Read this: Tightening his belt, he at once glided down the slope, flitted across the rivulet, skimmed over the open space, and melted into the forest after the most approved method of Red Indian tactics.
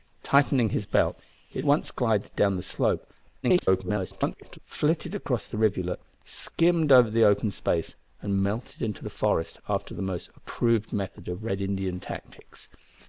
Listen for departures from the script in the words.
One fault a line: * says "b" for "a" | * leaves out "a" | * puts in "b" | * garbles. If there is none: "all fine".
* garbles